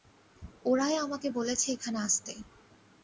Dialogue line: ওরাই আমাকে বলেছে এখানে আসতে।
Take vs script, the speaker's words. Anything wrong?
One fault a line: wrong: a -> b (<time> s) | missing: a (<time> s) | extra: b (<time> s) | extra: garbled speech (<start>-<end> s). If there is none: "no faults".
no faults